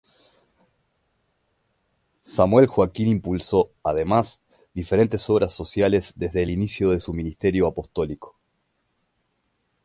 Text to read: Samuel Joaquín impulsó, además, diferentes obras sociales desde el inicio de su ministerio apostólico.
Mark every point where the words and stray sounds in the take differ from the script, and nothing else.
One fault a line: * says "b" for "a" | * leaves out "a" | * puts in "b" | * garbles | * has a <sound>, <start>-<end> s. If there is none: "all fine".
all fine